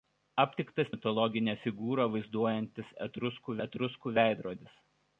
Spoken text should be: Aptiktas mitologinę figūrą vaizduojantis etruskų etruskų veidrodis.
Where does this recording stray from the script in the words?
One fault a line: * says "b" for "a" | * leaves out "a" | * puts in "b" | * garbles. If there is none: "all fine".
all fine